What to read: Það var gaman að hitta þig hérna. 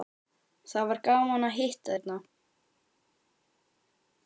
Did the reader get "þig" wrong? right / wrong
wrong